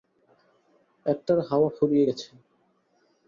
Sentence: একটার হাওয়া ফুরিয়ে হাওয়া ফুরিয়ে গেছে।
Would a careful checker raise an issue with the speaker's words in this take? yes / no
yes